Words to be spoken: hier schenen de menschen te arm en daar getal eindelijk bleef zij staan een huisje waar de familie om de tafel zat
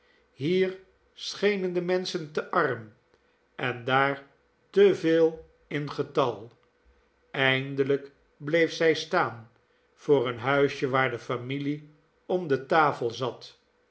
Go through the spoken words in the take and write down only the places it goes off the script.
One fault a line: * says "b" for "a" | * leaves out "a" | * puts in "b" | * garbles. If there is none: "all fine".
* puts in "te veel in"
* puts in "voor"